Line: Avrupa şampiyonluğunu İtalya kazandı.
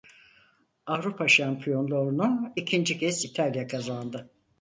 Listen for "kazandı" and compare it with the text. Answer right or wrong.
right